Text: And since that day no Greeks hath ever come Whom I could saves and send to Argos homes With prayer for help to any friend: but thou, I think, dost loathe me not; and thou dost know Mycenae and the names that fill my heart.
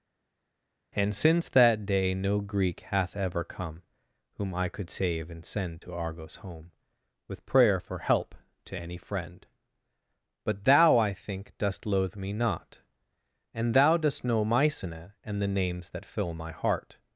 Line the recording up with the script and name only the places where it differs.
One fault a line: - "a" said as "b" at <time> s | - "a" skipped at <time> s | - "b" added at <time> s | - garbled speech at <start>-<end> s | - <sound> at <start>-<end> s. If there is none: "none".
- "Greeks" said as "Greek" at 2.4 s
- "saves" said as "save" at 4.9 s
- "homes" said as "home" at 6.4 s